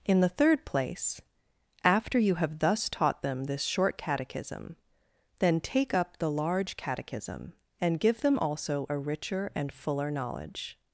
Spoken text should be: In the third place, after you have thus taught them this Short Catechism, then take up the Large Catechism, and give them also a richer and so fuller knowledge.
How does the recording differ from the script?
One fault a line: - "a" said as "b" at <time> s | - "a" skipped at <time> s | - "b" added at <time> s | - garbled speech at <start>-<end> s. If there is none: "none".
- "so" skipped at 9.7 s